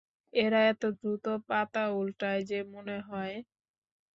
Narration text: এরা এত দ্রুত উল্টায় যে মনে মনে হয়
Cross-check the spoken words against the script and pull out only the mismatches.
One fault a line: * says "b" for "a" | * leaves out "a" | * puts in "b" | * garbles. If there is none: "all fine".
* puts in "পাতা"
* leaves out "মনে"